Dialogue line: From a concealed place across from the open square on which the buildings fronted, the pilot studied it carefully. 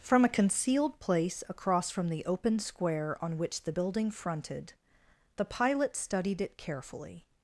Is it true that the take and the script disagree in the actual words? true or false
true